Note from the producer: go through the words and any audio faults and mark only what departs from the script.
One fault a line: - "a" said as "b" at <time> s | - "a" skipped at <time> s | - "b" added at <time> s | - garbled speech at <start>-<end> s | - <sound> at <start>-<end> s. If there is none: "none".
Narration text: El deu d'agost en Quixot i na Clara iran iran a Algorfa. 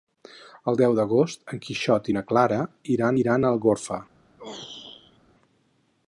- throat clearing at 4.4-5.2 s